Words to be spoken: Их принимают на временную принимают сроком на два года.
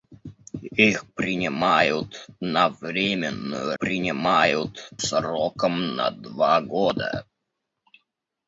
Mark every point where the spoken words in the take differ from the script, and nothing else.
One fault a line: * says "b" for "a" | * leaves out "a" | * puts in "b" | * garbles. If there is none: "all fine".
all fine